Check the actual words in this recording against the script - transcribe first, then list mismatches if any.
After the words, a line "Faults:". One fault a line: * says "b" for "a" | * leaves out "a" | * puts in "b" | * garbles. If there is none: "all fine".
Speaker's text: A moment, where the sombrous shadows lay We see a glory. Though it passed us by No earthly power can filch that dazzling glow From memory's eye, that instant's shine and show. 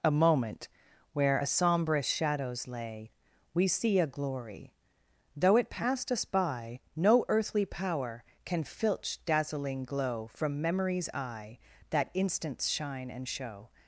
A moment, where a sombrous shadows lay We see a glory. Though it passed us by No earthly power can filch dazzling glow From memory's eye, that instant's shine and show.
Faults:
* says "a" for "the"
* leaves out "that"